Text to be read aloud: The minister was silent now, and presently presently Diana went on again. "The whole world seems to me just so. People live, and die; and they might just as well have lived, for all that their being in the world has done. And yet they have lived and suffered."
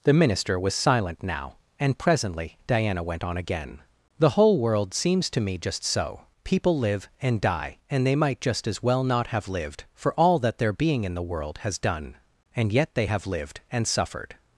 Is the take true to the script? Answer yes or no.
no